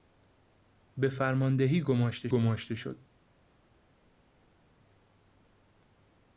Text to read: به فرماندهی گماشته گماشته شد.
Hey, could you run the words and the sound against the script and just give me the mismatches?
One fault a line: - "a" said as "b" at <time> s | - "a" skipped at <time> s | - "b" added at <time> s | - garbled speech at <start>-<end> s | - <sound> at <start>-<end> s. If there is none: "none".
none